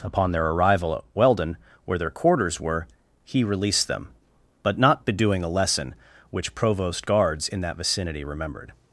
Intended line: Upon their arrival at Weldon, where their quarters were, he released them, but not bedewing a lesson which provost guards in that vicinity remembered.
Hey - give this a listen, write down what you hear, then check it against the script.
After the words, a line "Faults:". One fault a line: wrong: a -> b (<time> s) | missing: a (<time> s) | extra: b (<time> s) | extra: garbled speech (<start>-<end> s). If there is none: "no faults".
Upon their arrival at Weldon, where their quarters were, he released them, but not bedewing a lesson which provost guards in that vicinity remembered.
Faults:
no faults